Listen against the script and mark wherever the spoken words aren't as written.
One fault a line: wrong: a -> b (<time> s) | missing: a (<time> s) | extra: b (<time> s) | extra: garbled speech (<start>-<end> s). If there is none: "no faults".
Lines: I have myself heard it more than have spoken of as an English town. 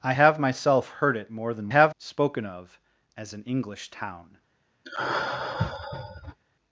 no faults